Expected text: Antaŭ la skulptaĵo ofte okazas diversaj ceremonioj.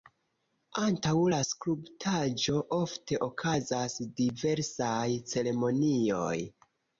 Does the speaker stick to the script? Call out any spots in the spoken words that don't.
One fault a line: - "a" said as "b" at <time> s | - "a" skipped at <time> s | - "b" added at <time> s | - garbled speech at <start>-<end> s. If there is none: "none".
none